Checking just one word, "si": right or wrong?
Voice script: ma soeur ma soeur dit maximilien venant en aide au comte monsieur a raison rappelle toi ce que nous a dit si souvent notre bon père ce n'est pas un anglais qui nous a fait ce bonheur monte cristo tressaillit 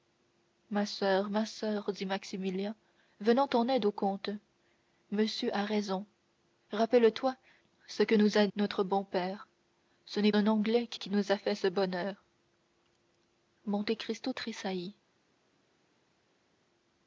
wrong